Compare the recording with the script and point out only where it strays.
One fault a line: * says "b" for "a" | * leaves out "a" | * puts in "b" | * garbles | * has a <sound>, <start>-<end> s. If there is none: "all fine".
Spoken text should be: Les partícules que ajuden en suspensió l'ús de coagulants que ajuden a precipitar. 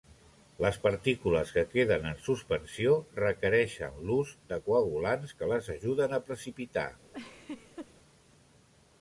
* says "queden" for "ajuden"
* puts in "requereixen"
* puts in "les"
* has a laugh, 7.1-7.9 s